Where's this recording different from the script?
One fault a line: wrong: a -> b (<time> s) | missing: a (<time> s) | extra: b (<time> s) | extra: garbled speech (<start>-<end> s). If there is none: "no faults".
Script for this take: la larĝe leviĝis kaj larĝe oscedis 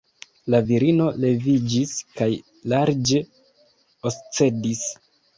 wrong: larĝe -> virino (0.7 s)